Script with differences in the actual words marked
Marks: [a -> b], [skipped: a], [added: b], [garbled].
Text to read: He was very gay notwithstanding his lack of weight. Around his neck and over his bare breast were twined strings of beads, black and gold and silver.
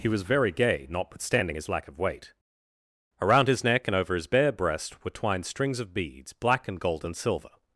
He was very gay notwithstanding his lack of weight. Around his neck and over his bare breast were twined strings of beads, black and gold and silver.